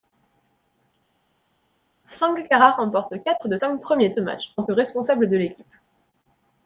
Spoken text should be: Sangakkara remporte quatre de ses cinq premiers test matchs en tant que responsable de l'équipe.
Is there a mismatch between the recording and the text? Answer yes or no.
yes